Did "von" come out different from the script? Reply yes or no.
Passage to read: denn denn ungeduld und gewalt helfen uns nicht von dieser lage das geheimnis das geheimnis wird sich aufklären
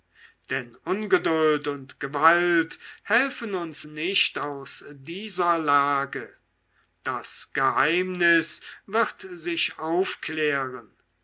yes